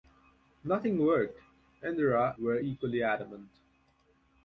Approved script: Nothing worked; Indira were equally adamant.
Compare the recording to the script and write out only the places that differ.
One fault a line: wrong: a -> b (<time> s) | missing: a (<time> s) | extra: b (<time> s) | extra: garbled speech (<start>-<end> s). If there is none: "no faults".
no faults